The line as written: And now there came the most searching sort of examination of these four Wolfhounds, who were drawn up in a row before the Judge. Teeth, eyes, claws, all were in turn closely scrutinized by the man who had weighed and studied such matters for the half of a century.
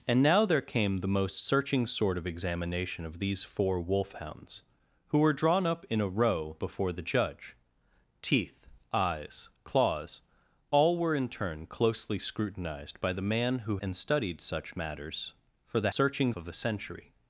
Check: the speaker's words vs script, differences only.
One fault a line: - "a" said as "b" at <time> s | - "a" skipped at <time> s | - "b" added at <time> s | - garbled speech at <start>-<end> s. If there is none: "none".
- "had weighed" skipped at 13.8 s
- "half" said as "searching" at 15.9 s